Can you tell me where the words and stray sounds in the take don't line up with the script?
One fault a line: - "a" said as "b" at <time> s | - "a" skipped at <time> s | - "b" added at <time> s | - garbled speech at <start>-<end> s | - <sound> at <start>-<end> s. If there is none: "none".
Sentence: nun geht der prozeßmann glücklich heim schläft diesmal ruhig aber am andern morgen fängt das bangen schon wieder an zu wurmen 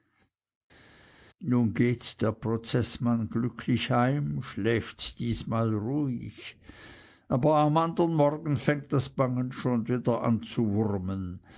none